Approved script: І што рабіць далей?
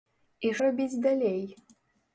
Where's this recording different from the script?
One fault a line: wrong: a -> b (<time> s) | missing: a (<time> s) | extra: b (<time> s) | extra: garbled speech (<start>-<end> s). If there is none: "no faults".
missing: што (0.5 s)